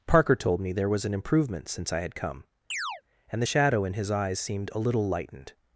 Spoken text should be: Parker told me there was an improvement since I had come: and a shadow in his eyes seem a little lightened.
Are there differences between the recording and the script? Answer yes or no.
yes